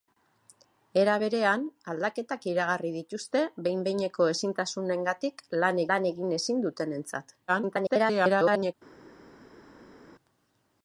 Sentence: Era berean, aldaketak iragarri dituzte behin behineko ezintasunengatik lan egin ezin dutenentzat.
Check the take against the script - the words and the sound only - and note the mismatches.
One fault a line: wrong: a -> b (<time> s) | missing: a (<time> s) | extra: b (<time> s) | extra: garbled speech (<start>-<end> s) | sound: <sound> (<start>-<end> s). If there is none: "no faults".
extra: lan (5.9 s)
extra: garbled speech (7.5-8.7 s)